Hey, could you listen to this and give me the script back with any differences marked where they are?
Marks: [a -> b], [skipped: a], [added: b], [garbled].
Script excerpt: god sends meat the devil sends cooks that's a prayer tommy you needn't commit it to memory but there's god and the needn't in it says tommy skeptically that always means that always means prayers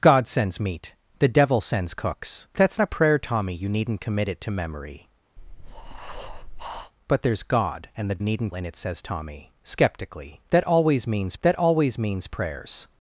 god sends meat the devil sends cooks that's a prayer tommy you needn't commit it to memory but there's god and the needn't in it says tommy skeptically that always means that always means prayers